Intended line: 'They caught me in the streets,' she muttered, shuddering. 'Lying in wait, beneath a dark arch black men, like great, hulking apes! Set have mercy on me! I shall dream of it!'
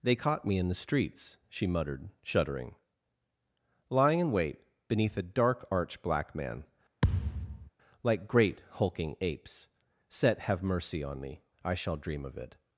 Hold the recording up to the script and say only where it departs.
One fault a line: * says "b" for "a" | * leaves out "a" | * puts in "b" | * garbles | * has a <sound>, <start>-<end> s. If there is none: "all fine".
* says "man" for "men"
* has a thud, 7.0-7.7 s